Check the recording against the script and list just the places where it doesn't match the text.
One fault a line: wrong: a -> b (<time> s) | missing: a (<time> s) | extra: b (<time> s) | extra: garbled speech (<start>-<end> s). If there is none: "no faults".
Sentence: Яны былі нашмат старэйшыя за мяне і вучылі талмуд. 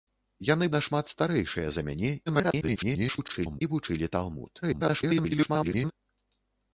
missing: былі (0.7 s)
extra: garbled speech (2.3-3.6 s)
extra: garbled speech (4.6-5.9 s)